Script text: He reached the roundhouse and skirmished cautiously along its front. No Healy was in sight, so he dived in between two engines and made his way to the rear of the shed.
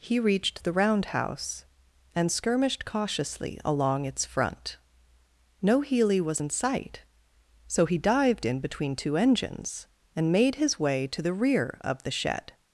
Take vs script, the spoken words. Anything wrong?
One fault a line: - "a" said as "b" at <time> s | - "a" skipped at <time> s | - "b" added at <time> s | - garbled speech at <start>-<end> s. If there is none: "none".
none